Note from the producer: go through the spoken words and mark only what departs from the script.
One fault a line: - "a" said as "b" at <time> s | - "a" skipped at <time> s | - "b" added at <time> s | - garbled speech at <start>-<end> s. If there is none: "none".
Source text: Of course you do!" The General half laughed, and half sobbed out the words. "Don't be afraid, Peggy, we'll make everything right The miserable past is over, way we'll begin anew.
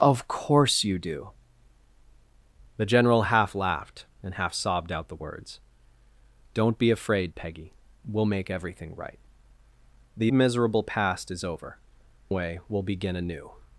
none